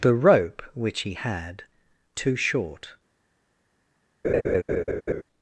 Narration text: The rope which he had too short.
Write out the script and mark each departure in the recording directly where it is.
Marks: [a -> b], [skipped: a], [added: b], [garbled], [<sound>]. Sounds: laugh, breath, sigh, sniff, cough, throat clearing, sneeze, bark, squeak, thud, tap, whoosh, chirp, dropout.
The rope which he had too short. [laugh]